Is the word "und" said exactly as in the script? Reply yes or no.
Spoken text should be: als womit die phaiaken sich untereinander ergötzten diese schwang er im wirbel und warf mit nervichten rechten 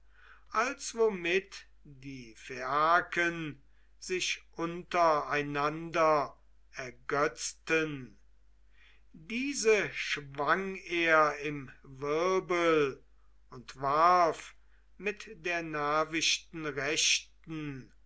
yes